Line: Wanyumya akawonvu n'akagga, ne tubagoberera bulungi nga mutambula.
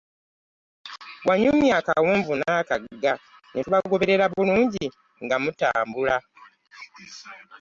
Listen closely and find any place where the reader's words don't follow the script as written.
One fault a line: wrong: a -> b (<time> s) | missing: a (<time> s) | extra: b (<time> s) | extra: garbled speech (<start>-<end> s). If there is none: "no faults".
no faults